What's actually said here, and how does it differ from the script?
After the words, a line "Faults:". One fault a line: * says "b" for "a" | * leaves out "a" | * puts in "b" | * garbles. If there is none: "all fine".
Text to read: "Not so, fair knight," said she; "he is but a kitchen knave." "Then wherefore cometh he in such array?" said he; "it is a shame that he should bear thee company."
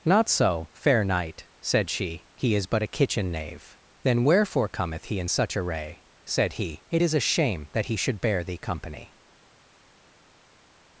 "Not so, fair knight," said she; "he is but a kitchen knave." "Then wherefore cometh he in such array?" said he; "it is a shame that he should bear thee company."
Faults:
all fine